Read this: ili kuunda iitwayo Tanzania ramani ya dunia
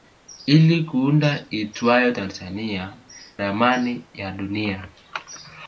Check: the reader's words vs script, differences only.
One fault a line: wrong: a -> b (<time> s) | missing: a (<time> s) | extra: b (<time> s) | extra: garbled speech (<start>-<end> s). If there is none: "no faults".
no faults